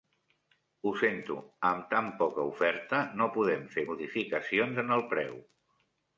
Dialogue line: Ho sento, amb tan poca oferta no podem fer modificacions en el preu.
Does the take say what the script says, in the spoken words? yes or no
yes